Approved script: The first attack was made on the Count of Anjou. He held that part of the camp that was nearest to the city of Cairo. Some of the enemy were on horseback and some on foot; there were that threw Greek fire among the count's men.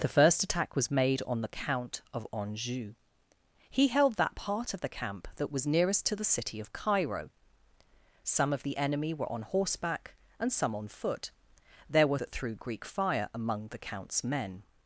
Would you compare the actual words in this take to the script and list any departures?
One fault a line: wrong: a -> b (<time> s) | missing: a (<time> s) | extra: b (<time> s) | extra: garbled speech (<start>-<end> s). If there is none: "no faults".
no faults